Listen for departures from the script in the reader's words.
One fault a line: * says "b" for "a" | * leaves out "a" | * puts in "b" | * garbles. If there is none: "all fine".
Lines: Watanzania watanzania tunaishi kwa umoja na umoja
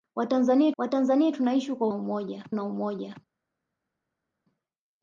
all fine